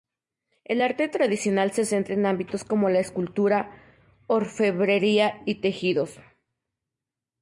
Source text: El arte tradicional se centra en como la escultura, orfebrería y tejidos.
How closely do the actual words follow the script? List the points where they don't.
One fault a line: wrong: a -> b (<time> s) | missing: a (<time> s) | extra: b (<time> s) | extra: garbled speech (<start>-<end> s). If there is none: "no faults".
extra: ámbitos (2.3 s)